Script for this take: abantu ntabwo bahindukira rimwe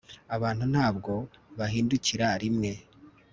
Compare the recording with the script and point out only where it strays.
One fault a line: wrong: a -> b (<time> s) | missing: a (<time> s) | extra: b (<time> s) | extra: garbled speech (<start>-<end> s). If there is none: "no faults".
no faults